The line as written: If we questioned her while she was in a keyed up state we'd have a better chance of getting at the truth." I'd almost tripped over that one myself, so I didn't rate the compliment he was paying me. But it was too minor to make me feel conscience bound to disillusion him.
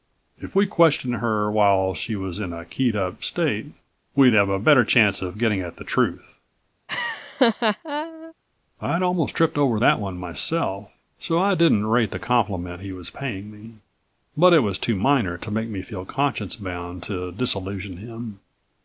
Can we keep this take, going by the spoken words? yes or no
yes